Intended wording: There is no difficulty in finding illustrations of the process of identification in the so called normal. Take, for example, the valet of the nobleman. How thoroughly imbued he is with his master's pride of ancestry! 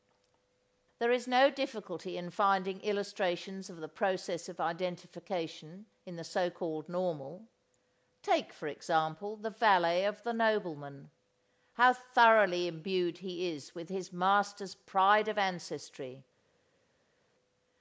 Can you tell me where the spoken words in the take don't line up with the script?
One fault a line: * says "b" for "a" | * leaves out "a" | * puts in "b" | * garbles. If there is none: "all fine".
all fine